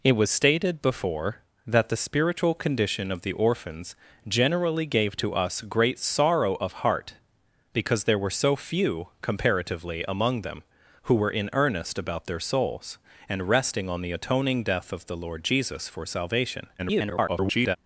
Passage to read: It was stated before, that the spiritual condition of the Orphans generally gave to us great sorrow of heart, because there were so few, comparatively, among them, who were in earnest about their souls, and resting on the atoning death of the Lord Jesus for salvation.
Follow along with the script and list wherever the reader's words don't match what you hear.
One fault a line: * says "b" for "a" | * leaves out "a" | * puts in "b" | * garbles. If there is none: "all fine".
* garbles